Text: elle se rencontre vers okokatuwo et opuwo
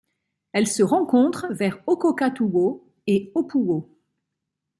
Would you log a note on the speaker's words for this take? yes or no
no